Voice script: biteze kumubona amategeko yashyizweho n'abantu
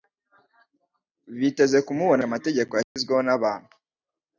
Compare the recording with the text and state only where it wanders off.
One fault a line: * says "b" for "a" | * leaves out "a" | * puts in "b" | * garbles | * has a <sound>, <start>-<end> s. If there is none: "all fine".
* has a dropout, 2.8-3.0 s